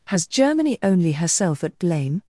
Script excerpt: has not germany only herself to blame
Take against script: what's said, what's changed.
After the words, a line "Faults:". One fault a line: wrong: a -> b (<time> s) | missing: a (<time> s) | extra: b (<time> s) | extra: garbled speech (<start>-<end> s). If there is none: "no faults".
has germany only herself at blame
Faults:
missing: not (0.3 s)
wrong: to -> at (1.6 s)